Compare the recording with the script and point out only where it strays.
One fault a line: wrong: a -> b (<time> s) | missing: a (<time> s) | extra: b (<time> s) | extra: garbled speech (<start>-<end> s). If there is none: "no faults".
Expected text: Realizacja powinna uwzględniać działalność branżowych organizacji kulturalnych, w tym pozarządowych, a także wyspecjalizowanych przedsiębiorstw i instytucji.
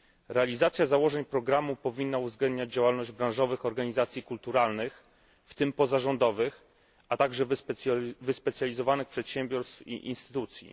extra: założeń programu (0.8 s)